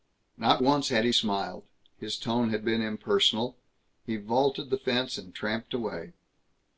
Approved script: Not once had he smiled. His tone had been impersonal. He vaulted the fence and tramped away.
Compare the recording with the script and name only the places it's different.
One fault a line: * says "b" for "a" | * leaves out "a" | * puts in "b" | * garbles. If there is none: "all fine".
all fine